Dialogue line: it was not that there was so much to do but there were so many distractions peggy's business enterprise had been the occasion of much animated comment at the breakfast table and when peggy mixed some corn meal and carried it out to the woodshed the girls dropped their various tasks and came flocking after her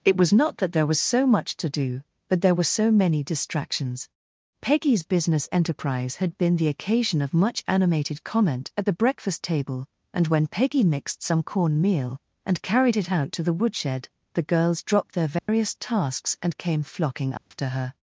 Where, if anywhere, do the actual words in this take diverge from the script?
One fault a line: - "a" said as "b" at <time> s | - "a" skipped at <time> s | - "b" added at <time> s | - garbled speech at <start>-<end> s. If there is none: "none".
none